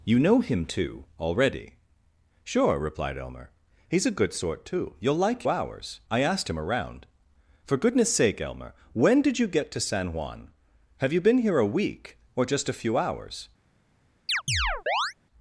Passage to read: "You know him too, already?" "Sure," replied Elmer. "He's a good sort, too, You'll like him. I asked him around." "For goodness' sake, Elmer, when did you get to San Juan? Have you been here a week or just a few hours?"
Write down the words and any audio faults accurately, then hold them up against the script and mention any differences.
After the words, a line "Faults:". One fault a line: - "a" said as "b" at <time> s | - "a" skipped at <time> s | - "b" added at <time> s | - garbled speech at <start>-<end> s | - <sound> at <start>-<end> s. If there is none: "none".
"You know him too, already?" "Sure," replied Elmer. "He's a good sort, too, You'll like hours. I asked him around." "For goodness' sake, Elmer, when did you get to San Juan? Have you been here a week or just a few hours?"
Faults:
- "him" said as "hours" at 5.5 s
- chirp at 14.3-15.1 s